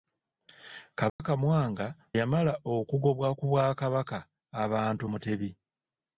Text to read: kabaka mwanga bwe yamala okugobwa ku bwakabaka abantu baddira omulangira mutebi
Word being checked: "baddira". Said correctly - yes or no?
no